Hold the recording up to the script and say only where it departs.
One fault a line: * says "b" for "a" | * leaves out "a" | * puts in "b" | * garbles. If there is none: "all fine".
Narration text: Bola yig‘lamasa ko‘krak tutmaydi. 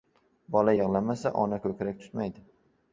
* puts in "ona"